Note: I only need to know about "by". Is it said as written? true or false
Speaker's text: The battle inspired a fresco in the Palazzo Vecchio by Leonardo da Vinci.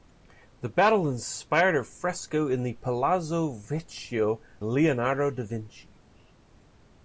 false